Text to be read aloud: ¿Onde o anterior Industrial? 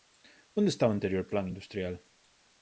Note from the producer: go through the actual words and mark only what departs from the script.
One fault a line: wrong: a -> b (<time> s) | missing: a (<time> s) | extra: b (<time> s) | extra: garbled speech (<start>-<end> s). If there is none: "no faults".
extra: está (0.7 s)
extra: Plan (1.3 s)